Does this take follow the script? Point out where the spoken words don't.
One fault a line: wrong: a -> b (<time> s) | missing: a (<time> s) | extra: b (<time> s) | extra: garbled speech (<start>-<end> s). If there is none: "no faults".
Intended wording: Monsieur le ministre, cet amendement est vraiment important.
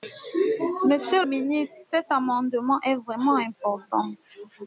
missing: le (1.2 s)